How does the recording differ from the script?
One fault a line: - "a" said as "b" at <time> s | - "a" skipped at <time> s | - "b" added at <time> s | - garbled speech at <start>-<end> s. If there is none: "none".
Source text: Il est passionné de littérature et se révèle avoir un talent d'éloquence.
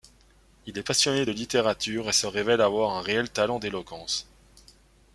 - "réel" added at 3.0 s